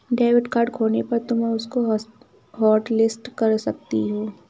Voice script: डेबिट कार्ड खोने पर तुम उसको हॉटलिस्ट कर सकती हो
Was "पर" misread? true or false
false